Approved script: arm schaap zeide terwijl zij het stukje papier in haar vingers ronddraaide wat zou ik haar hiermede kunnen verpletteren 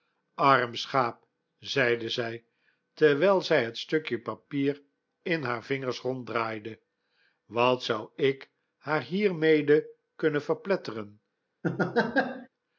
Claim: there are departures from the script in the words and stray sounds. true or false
true